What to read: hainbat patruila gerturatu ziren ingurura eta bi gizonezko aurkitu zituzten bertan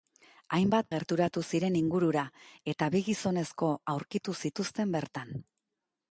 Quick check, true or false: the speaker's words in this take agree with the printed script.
false